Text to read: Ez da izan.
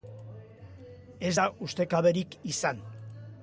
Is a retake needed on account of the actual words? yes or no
yes